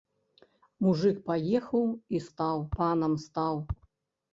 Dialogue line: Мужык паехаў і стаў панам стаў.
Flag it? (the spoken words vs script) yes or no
no